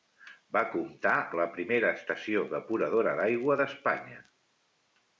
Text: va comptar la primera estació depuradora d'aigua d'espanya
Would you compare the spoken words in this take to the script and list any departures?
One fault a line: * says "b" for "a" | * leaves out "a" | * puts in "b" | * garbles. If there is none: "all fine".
all fine